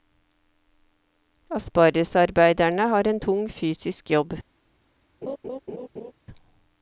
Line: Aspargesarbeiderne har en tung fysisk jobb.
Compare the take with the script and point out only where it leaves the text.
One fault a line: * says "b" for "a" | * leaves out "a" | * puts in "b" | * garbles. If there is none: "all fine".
all fine